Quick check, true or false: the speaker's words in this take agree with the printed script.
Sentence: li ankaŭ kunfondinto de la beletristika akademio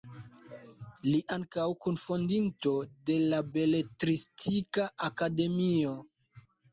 true